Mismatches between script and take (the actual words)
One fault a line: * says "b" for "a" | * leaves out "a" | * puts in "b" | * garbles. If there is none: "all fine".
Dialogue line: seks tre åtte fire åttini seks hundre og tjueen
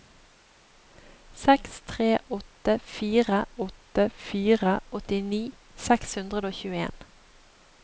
* puts in "åtte fire"